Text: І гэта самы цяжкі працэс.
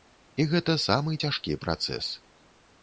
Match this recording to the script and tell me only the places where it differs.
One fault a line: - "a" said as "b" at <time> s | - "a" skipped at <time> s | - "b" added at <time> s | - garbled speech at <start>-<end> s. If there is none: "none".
none